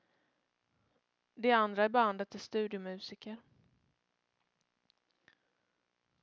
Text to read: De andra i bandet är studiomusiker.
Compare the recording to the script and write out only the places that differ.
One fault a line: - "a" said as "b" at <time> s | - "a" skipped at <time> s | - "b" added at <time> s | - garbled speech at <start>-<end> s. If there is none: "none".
none